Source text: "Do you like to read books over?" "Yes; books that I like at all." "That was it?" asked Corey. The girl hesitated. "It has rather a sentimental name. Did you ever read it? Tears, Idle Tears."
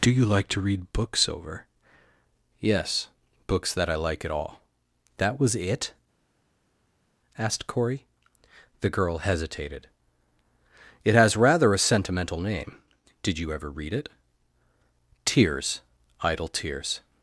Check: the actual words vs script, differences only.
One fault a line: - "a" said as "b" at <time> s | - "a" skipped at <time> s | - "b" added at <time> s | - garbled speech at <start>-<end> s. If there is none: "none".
none